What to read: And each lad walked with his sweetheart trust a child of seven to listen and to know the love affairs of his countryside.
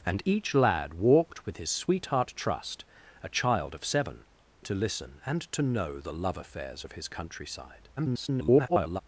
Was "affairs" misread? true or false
false